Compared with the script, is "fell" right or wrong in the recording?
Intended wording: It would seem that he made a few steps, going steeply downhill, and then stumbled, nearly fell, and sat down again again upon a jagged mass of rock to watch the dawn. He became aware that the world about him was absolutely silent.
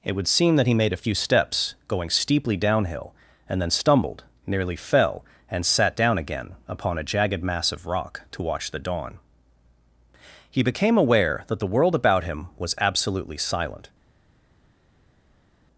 right